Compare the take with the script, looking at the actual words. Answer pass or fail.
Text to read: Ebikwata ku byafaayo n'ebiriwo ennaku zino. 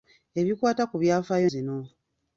fail